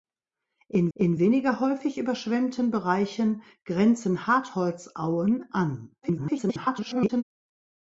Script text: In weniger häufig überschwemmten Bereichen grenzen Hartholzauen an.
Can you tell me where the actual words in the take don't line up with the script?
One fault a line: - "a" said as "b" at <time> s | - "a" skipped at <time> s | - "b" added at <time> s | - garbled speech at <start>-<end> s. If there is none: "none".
- "in" added at 0.9 s
- garbled speech at 6.0-7.2 s